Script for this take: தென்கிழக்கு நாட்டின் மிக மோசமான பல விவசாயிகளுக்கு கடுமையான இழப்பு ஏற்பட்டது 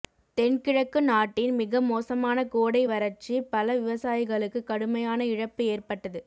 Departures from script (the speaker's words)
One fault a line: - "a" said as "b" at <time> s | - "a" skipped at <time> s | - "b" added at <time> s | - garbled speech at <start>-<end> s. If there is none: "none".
- "கோடை வறட்சி" added at 2.5 s